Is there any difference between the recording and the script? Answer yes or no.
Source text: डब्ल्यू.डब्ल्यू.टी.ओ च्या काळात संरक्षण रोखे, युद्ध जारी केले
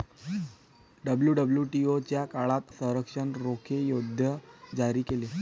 no